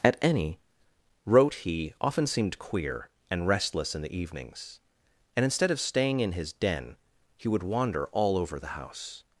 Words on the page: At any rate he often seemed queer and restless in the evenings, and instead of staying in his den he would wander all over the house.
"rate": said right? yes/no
no